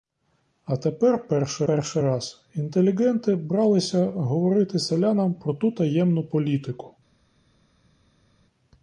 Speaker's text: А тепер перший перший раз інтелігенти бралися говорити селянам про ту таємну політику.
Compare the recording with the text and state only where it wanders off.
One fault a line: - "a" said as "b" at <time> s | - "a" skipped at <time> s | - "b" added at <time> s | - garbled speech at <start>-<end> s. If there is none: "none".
none